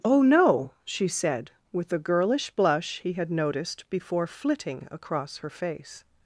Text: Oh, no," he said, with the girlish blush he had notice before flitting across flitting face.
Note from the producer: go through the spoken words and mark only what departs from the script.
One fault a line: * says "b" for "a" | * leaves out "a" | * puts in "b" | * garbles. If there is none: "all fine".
* says "she" for "he"
* says "noticed" for "notice"
* says "her" for "flitting"